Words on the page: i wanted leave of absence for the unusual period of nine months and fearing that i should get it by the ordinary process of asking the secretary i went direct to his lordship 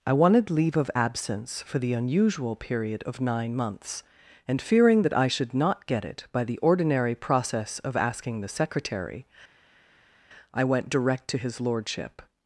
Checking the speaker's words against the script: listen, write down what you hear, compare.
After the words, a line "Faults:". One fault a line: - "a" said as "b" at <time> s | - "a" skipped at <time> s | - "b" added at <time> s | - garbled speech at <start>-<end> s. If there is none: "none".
i wanted leave of absence for the unusual period of nine months and fearing that i should not get it by the ordinary process of asking the secretary i went direct to his lordship
Faults:
- "not" added at 5.5 s